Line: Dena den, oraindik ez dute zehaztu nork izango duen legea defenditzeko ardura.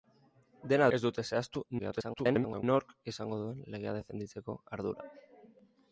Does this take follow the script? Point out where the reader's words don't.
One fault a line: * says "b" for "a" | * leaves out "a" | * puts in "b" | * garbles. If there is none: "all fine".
* leaves out "den oraindik"
* garbles